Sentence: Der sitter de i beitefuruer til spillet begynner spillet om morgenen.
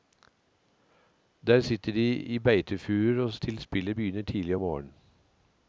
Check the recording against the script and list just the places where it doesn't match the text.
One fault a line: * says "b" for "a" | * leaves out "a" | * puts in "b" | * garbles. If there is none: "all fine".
* says "tidlig" for "spillet"